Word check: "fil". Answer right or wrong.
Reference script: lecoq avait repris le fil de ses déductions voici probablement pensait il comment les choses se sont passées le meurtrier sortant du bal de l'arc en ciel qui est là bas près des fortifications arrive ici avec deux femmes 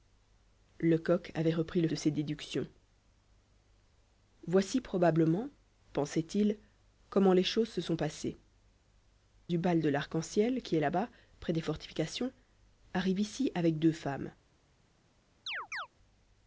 wrong